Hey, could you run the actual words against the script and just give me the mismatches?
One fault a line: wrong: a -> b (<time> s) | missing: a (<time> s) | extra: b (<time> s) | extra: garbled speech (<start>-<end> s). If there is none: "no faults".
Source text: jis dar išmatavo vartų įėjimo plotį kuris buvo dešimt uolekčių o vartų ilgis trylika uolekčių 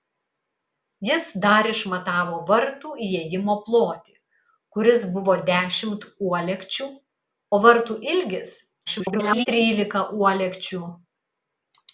extra: garbled speech (8.9-9.5 s)